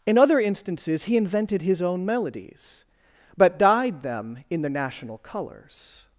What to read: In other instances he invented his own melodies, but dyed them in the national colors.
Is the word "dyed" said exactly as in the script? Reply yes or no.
yes